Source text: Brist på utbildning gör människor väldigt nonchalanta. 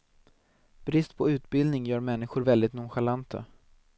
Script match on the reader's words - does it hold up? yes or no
yes